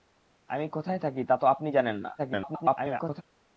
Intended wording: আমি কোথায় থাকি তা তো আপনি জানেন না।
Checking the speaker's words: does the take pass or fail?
fail